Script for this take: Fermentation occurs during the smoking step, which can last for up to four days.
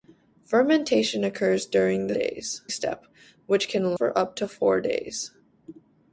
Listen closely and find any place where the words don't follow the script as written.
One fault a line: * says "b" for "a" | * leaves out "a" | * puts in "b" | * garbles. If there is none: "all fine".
* says "days" for "smoking"
* leaves out "last"